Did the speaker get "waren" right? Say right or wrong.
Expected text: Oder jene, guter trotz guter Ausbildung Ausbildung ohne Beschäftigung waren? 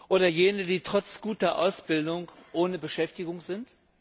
wrong